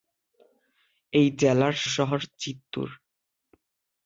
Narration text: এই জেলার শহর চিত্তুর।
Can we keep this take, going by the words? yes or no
yes